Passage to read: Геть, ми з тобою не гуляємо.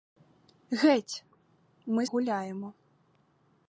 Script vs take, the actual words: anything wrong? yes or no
yes